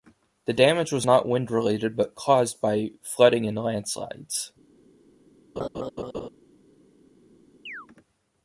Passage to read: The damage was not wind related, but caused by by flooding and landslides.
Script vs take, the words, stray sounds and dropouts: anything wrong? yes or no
yes